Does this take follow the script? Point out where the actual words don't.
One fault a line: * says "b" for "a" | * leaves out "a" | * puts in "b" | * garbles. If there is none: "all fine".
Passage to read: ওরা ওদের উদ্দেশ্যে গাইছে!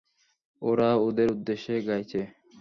all fine